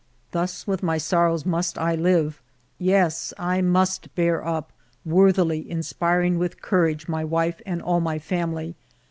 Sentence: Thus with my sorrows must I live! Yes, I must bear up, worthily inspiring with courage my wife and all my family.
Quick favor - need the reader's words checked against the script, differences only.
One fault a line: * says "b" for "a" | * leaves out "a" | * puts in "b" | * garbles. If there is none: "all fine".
all fine